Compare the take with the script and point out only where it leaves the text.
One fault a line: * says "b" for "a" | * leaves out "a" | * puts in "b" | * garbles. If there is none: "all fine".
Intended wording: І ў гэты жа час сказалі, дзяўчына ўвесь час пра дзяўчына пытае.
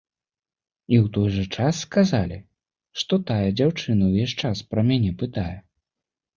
* says "той" for "гэты"
* puts in "што тая"
* says "мяне" for "дзяўчына"